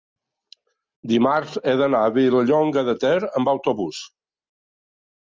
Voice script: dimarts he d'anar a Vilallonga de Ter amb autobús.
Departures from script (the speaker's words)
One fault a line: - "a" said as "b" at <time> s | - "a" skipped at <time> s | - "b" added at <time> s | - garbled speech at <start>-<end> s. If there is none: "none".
none